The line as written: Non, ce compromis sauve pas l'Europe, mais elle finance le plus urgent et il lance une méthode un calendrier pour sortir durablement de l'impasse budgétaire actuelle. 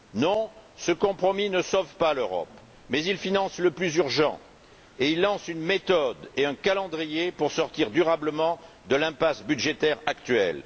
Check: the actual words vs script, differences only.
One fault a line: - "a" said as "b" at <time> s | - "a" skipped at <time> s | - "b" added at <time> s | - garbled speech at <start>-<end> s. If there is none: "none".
- "ne" added at 1.5 s
- "elle" said as "il" at 3.0 s
- "et" added at 6.3 s